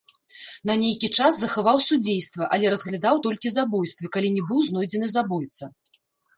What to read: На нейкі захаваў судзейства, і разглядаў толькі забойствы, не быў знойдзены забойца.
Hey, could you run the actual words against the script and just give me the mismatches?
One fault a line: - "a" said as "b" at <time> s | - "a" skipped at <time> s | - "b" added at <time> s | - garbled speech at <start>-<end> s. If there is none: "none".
- "час" added at 1.2 s
- "і" said as "але" at 2.6 s
- "калі" added at 4.2 s